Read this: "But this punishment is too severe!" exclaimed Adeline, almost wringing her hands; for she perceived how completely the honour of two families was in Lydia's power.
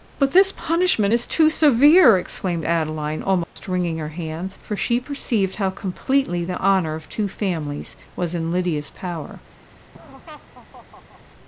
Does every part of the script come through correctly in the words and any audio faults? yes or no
no